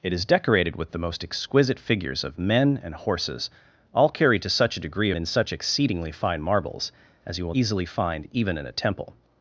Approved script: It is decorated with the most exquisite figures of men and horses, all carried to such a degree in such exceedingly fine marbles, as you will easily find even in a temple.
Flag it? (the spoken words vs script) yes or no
no